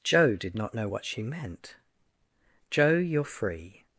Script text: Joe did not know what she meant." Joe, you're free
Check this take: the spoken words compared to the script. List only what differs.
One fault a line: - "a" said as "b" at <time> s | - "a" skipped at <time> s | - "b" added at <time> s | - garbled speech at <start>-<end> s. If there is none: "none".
none